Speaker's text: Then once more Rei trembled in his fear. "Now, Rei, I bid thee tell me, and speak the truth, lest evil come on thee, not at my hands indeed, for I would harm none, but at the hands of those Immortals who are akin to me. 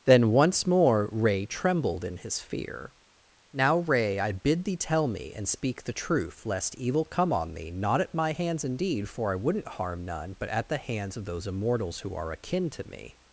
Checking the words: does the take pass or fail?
fail